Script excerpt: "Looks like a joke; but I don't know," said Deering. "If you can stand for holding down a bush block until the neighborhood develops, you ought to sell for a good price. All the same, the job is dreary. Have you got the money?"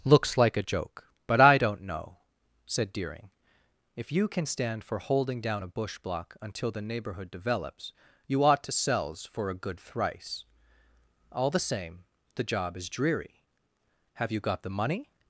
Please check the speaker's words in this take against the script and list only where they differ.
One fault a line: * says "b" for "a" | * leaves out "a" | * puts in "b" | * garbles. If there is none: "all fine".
* says "sells" for "sell"
* says "thrice" for "price"